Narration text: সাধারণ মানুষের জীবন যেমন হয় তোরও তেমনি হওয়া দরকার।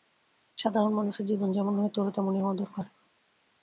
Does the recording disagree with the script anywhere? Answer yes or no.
no